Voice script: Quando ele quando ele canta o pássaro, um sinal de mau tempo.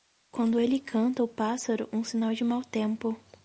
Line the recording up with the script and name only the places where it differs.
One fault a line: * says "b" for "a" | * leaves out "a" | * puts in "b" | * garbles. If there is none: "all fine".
* leaves out "quando ele"